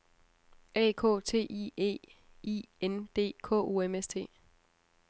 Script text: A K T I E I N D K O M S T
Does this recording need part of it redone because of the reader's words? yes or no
no